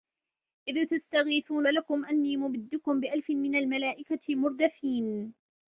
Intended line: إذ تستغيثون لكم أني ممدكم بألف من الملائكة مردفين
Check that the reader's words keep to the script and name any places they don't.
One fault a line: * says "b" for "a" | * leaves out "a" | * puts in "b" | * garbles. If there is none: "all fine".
all fine